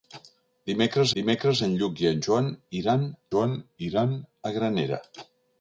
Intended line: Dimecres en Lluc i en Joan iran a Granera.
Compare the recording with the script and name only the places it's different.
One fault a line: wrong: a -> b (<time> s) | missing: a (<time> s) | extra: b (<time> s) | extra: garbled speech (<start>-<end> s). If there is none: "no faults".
extra: dimecres (1.2 s)
extra: Joan iran (3.3 s)